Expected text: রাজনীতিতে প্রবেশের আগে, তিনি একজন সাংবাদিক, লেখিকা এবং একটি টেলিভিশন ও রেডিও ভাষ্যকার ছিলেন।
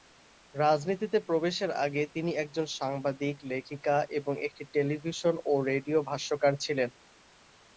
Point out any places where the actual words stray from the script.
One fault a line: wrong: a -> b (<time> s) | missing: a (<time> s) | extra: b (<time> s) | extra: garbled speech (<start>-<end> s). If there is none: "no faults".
no faults